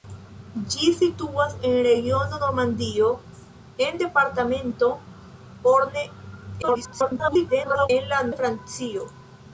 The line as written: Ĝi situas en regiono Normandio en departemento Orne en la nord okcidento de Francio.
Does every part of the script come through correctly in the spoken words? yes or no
no